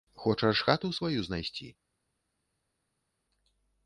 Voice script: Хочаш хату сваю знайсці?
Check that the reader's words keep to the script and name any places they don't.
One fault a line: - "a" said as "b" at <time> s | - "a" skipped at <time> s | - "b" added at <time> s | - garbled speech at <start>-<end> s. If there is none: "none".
none